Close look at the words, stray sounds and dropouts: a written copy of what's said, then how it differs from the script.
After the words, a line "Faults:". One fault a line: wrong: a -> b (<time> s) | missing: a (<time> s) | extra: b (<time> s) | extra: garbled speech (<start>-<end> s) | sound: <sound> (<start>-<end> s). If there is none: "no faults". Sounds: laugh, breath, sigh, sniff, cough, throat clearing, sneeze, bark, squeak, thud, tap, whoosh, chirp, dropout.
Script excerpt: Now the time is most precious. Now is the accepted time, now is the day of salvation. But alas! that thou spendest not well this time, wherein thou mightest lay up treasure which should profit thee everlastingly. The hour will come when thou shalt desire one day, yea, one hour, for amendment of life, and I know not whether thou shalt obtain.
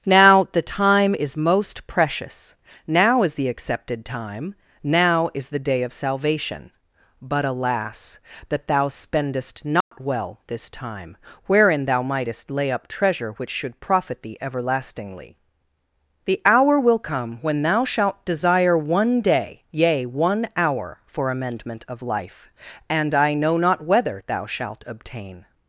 Now the time is most precious. Now is the accepted time, now is the day of salvation. But alas! that thou spendest not well this time, wherein thou mightest lay up treasure which should profit thee everlastingly. The hour will come when thou shalt desire one day, yea, one hour, for amendment of life, and I know not whether thou shalt obtain.
Faults:
sound: dropout (9.8-9.9 s)